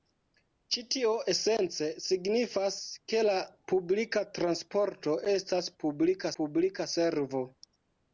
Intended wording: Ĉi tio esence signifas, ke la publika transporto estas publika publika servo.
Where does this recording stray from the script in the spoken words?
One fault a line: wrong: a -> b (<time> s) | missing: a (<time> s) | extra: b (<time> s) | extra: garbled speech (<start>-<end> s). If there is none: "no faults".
no faults